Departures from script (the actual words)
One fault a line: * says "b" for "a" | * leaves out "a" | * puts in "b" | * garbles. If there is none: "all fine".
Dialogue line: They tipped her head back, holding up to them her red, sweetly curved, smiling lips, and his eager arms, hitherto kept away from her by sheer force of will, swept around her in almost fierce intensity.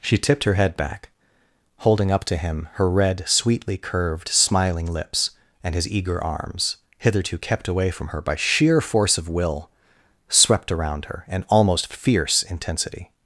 * says "She" for "They"
* says "him" for "them"